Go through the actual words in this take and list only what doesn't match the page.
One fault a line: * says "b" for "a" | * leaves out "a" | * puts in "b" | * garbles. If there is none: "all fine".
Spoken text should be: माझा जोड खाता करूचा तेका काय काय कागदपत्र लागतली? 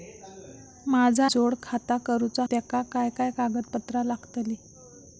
all fine